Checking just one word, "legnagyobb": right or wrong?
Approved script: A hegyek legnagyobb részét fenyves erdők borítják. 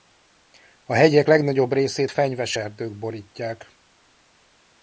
right